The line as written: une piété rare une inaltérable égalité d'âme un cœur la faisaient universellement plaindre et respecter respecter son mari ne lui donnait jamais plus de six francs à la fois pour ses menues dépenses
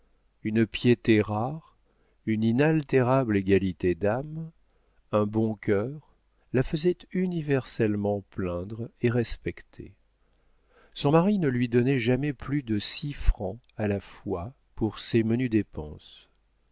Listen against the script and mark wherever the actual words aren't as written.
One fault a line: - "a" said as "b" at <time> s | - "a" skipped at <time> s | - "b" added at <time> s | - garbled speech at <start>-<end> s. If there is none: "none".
- "bon" added at 5.3 s
- "respecter" skipped at 9.9 s